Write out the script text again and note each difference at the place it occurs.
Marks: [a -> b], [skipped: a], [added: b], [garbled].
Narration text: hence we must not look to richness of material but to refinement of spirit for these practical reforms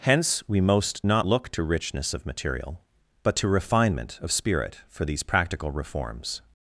hence we [must -> most] not look to richness of material but to refinement of spirit for these practical reforms